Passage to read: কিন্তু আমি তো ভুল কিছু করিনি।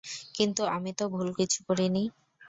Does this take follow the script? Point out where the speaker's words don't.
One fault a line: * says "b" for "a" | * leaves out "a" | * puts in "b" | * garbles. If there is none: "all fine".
all fine